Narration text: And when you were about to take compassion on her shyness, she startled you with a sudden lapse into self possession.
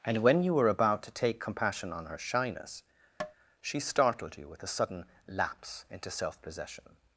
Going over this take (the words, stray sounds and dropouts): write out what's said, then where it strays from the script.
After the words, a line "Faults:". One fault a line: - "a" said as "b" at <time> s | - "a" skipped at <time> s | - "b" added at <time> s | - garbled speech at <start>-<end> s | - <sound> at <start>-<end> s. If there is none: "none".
And when you were about to take compassion on her shyness, she startled you with a sudden lapse into self possession.
Faults:
- tap at 3.2-3.3 s